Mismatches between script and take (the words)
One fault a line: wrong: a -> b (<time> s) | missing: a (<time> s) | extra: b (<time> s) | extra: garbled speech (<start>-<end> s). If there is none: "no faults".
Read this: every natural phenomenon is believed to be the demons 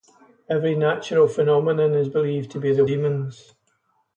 no faults